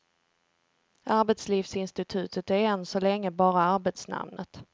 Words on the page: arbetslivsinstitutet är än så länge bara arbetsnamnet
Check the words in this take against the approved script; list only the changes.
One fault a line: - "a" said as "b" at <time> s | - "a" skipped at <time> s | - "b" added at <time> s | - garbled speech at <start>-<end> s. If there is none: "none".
none